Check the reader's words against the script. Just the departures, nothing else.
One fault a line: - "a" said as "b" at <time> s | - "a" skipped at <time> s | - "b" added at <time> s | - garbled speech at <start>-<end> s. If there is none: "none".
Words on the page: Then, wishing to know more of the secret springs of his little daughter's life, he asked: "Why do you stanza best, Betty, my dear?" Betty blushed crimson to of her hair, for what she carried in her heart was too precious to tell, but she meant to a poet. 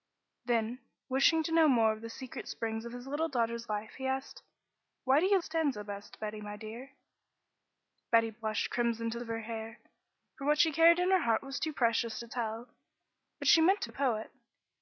none